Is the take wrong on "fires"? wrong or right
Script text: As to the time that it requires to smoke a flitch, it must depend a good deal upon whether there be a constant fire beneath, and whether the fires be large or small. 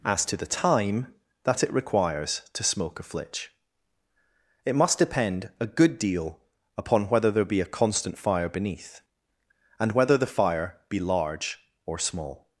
wrong